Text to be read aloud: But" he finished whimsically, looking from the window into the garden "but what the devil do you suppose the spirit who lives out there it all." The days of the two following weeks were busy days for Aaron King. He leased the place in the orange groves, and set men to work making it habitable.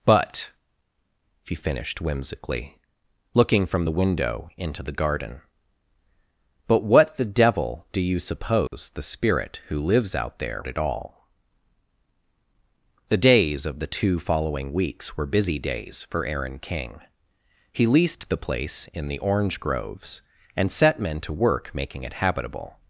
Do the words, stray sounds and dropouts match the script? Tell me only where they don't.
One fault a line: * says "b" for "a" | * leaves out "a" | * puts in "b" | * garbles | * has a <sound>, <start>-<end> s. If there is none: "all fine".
* has a dropout, 8.7-8.7 s